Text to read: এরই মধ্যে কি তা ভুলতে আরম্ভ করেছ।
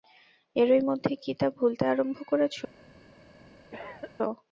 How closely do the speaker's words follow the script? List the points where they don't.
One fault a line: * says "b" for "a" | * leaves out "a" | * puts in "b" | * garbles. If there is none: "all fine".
all fine